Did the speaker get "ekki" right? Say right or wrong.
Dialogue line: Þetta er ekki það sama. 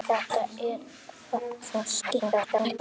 wrong